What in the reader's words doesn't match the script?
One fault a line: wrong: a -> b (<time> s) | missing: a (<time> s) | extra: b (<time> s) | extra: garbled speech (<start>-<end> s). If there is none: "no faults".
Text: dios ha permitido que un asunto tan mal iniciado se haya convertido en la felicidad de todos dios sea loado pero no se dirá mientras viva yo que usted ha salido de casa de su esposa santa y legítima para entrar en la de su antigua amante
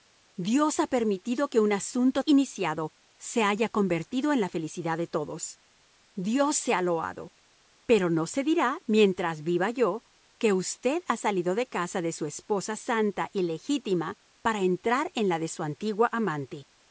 missing: tan mal (2.2 s)